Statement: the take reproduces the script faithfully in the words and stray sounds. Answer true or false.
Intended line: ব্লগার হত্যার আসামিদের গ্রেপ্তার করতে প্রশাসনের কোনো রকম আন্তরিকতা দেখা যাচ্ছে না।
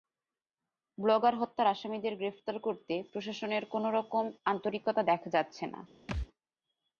false